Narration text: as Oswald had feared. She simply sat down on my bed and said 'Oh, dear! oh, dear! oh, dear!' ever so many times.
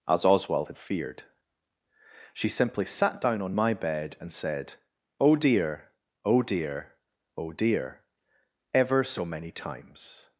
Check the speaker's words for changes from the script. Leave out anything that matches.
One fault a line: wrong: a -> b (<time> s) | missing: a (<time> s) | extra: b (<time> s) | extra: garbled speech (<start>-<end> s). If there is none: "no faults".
no faults